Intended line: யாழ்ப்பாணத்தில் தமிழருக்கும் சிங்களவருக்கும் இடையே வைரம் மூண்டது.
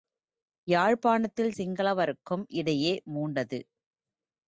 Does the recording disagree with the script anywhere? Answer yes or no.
yes